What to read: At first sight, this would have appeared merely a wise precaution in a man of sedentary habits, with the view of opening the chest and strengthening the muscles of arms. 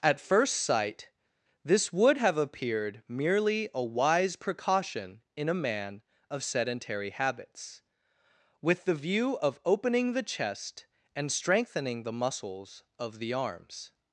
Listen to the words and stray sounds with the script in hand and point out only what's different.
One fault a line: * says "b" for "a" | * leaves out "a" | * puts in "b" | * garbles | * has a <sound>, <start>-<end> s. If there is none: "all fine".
* puts in "the"